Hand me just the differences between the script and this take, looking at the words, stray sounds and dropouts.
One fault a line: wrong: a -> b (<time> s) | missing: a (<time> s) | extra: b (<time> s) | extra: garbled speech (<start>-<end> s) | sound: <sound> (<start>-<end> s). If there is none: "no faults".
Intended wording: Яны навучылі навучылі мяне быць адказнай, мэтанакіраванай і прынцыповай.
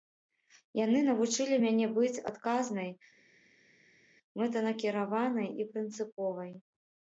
missing: навучылі (1.6 s)